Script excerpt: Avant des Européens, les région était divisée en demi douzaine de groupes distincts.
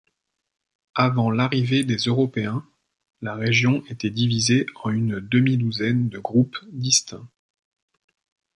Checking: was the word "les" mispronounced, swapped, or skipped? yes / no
yes